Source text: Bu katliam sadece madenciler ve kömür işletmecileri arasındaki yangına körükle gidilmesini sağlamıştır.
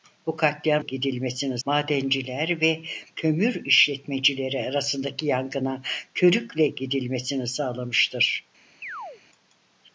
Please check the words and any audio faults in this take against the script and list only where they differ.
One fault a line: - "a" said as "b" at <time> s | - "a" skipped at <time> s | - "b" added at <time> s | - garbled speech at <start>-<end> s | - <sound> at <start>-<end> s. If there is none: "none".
- "sadece" said as "gidilmesini" at 0.8 s
- chirp at 8.8-9.2 s